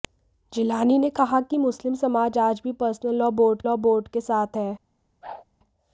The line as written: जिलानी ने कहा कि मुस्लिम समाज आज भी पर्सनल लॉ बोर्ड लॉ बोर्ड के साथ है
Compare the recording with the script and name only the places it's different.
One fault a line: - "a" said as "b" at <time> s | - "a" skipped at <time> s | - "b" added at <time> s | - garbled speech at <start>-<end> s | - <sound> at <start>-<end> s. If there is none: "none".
- whoosh at 5.2-5.4 s